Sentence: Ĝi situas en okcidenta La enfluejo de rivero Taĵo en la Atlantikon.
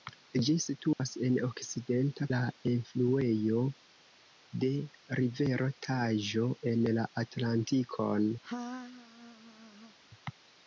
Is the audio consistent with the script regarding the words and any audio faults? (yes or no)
no